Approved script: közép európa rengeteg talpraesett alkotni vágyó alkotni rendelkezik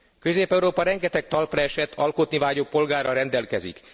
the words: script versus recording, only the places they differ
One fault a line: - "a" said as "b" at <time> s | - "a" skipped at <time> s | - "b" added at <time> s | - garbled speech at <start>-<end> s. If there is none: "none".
- "alkotni" said as "polgárral" at 2.6 s